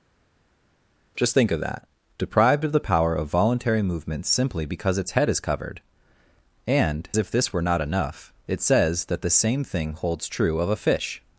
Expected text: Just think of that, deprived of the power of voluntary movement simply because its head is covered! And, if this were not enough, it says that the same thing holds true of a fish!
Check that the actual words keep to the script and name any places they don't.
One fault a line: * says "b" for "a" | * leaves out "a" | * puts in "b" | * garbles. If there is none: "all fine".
all fine